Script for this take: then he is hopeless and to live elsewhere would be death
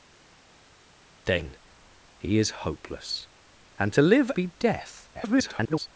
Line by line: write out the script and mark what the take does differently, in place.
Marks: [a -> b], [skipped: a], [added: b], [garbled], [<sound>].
then he is hopeless and to live [skipped: elsewhere would] be death [garbled]